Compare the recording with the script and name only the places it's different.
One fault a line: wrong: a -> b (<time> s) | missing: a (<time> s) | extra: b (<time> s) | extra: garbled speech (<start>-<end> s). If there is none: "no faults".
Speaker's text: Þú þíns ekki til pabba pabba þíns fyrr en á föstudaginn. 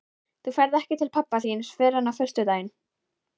wrong: þíns -> ferð (0.6 s)
missing: pabba (1.4 s)